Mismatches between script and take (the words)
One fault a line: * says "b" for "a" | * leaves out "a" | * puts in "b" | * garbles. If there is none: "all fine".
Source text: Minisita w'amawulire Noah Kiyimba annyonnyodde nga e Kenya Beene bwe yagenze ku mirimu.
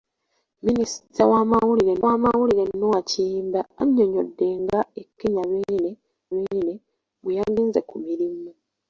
* puts in "w'amawulire"
* puts in "Beene"